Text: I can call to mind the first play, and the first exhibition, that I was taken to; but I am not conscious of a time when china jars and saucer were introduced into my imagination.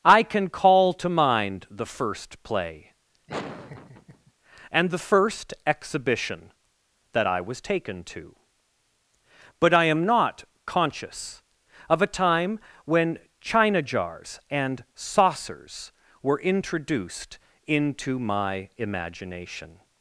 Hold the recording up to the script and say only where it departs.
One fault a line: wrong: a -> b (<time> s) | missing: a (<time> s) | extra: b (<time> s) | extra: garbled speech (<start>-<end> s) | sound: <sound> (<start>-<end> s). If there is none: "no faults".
sound: laugh (3.3-4.3 s)
wrong: saucer -> saucers (14.9 s)